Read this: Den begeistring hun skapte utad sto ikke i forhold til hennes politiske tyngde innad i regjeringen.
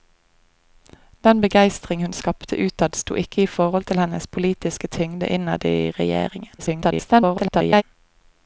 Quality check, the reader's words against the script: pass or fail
fail